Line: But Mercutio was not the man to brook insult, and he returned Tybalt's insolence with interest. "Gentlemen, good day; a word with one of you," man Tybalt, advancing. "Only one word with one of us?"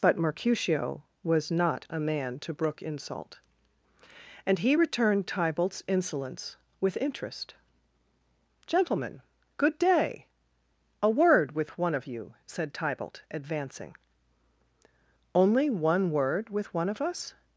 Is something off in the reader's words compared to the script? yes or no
yes